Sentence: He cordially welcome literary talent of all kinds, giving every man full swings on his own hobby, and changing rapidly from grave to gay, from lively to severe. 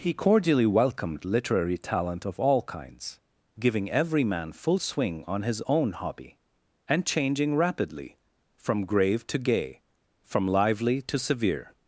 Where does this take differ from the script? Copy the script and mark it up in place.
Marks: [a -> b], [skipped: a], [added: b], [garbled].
He cordially [welcome -> welcomed] literary talent of all kinds, giving every man full [swings -> swing] on his own hobby, and changing rapidly from grave to gay, from lively to severe.